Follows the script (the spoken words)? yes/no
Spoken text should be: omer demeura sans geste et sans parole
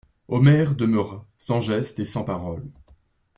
yes